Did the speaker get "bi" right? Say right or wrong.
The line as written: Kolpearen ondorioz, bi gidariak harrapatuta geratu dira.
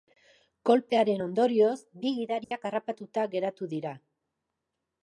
right